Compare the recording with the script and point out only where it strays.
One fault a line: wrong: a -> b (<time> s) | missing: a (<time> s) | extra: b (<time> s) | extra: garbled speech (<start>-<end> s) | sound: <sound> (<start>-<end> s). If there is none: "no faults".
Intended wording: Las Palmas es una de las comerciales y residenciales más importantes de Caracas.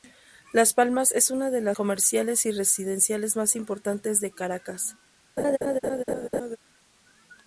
sound: laugh (5.4-6.6 s)